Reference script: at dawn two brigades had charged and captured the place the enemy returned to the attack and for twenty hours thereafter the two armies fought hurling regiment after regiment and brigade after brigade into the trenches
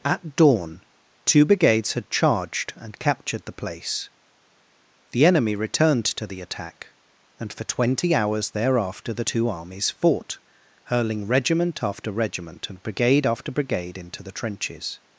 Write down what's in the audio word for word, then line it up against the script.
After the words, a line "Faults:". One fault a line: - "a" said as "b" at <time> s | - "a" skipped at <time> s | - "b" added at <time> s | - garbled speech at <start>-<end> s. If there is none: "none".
at dawn two brigades had charged and captured the place the enemy returned to the attack and for twenty hours thereafter the two armies fought hurling regiment after regiment and brigade after brigade into the trenches
Faults:
none